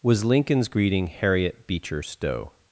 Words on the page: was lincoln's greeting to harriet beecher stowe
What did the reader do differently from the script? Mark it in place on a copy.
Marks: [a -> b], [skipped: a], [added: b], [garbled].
was lincoln's greeting [skipped: to] harriet beecher stowe